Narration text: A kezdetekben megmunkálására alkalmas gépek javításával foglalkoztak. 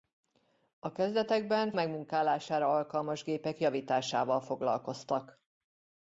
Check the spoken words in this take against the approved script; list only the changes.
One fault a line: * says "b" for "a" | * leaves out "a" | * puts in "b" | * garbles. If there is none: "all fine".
all fine